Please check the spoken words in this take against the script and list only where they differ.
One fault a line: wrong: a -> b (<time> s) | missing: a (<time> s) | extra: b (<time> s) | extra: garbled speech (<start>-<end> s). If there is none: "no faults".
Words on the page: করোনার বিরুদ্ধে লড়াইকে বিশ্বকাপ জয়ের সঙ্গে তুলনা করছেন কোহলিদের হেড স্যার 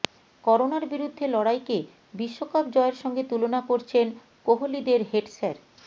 no faults